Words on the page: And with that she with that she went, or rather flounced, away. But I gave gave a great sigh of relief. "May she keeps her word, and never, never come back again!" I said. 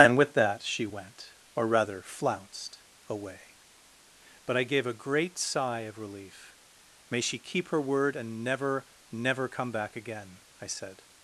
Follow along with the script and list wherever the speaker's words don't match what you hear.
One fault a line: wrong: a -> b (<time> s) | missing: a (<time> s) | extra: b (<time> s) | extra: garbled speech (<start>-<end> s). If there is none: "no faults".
missing: with that she (0.9 s)
missing: gave (4.9 s)
wrong: keeps -> keep (7.4 s)